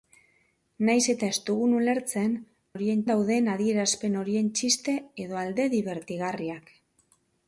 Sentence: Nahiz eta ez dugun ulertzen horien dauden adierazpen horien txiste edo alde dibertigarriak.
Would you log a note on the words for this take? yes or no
no